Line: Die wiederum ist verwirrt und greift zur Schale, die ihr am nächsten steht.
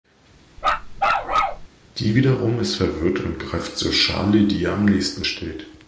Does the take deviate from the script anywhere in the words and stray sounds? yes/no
yes